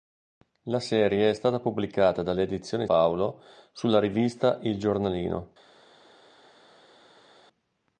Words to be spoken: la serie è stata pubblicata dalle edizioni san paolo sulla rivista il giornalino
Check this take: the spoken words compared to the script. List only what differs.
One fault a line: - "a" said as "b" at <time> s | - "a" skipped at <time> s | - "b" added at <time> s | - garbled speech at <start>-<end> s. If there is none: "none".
- "san" skipped at 2.9 s